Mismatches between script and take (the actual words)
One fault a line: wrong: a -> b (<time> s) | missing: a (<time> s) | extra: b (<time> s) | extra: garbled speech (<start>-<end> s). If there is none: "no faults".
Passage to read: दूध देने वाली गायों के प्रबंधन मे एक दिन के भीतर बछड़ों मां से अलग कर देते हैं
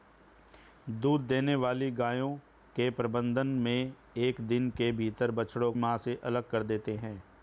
no faults